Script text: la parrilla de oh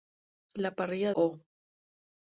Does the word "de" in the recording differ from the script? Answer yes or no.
yes